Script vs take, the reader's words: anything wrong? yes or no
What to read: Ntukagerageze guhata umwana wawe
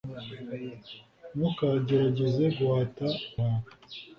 yes